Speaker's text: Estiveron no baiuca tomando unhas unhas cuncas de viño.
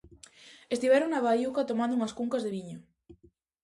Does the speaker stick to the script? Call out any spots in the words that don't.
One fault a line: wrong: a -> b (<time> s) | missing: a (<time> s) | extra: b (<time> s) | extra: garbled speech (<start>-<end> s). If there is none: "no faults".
wrong: no -> na (1.1 s)
missing: unhas (2.2 s)